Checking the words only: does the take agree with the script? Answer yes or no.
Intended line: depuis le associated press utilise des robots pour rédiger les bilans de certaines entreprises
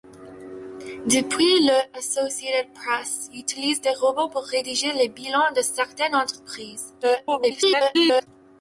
no